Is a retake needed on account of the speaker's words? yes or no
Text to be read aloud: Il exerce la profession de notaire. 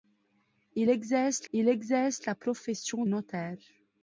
yes